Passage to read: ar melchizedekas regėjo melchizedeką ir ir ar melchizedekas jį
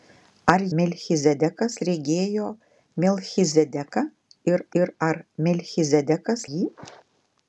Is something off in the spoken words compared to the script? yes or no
no